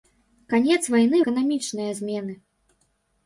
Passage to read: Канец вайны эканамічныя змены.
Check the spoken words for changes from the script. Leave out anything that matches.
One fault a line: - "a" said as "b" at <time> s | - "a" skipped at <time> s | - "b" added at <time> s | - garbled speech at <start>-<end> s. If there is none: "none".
none